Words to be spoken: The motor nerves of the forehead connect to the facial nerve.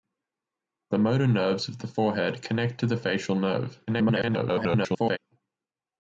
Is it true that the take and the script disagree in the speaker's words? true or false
true